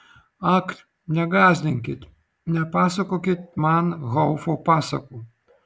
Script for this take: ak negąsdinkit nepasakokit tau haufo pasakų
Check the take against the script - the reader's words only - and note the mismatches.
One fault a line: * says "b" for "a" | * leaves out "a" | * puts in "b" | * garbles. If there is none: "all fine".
* says "man" for "tau"